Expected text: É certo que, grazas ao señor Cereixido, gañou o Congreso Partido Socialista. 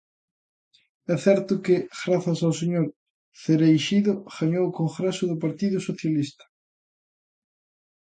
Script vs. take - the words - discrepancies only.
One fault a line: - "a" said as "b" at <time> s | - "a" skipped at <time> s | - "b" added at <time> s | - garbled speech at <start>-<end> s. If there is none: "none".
- "do" added at 5.3 s